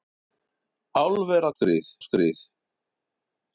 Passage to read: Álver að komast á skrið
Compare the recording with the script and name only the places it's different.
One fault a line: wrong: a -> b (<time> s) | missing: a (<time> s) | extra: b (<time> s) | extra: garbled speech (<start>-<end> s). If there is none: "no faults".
wrong: komast -> skrið (1.6 s)